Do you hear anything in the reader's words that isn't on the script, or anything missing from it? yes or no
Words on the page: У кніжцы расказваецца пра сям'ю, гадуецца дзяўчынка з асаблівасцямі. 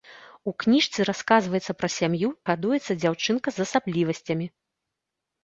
no